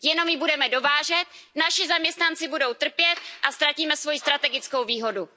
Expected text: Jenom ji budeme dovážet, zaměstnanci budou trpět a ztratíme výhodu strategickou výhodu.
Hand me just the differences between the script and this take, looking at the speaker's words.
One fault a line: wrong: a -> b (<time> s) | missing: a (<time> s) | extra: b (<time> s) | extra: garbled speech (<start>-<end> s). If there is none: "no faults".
extra: naši (1.6 s)
wrong: výhodu -> svoji (4.0 s)